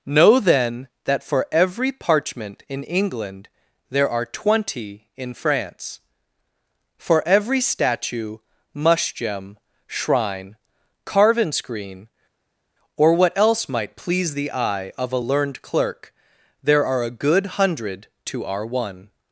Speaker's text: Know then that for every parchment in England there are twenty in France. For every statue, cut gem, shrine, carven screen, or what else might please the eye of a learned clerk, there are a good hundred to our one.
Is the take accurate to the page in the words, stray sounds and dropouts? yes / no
no